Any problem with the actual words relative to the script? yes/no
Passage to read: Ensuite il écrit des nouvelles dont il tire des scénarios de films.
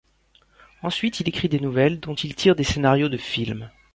no